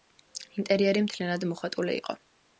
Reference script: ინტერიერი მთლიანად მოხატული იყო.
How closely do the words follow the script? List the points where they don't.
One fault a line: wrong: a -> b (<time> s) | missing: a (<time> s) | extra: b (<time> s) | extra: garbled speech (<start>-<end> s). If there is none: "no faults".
no faults